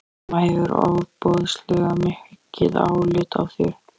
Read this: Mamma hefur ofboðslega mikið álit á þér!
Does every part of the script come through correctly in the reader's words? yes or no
yes